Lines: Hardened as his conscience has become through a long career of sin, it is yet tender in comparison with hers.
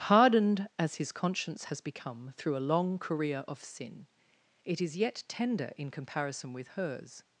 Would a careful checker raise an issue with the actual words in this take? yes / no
no